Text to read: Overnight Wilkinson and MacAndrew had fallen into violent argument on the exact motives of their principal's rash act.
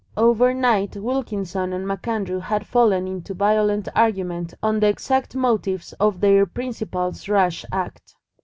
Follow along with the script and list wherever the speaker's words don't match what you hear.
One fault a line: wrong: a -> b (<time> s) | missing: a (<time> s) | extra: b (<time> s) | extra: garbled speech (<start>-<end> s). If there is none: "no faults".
no faults